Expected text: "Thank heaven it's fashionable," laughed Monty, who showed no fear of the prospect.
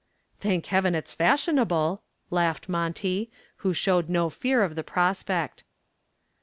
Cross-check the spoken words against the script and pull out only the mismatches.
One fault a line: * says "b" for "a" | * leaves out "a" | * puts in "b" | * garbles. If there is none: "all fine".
all fine